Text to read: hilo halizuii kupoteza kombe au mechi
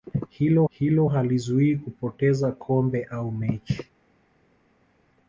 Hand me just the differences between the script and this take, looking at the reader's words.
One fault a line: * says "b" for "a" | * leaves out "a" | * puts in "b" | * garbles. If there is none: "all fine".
* puts in "hilo"